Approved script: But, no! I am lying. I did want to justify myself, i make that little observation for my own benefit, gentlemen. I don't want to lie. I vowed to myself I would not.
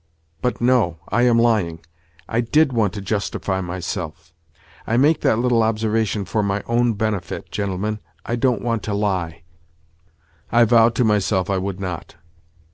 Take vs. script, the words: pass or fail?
pass